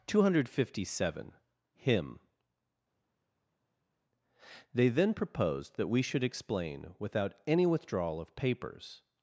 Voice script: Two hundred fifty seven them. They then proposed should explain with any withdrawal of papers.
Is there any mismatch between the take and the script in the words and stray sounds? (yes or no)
yes